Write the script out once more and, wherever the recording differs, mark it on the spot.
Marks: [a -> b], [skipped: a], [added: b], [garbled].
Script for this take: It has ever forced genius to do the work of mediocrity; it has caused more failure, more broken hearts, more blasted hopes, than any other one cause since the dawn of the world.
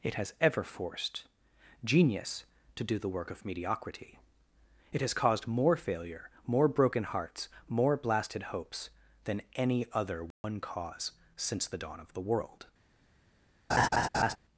It has ever forced genius to do the work of mediocrity; it has caused more failure, more broken hearts, more blasted hopes, than any other one cause since the dawn of the world.